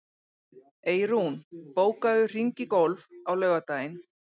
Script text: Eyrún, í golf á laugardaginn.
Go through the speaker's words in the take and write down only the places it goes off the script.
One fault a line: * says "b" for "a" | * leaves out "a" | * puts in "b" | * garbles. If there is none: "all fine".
* puts in "bókaðu hring"